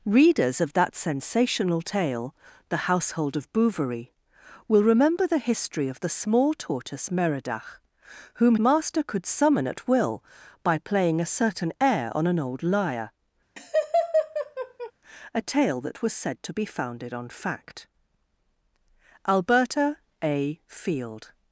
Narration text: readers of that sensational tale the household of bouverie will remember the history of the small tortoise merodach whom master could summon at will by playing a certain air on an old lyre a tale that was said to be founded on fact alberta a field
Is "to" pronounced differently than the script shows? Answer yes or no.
no